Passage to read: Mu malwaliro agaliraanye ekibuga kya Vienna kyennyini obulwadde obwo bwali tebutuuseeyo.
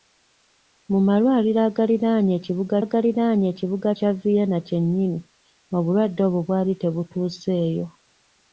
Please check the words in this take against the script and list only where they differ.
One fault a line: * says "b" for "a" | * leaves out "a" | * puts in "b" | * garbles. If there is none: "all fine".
* puts in "agaliraanye ekibuga"